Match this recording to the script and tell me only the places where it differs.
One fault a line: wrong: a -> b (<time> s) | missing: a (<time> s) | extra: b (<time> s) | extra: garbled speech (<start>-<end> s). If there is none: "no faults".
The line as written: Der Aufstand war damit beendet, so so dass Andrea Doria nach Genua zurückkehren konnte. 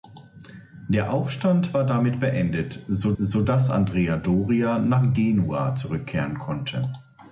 no faults